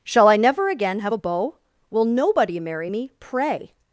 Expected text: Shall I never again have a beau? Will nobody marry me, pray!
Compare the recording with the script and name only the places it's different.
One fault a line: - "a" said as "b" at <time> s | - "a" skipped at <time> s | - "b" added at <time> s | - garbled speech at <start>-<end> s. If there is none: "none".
none